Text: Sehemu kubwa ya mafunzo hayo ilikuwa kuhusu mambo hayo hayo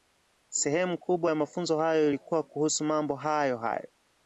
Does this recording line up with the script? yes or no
yes